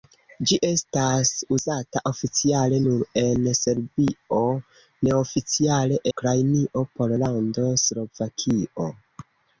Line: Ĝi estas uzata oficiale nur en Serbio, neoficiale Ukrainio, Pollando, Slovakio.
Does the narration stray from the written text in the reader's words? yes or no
no